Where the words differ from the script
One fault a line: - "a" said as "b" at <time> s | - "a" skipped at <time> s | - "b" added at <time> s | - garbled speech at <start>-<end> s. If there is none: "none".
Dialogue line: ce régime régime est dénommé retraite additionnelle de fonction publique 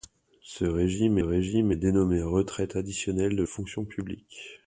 none